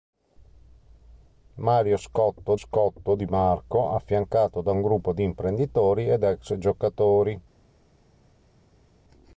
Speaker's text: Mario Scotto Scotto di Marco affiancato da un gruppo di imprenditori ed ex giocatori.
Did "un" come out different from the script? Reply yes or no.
no